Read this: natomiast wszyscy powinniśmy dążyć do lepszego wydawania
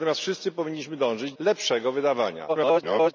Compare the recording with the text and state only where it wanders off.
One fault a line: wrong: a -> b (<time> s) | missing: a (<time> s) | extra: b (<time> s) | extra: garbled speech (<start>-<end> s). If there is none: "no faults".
missing: do (1.3 s)
extra: garbled speech (2.5-3.1 s)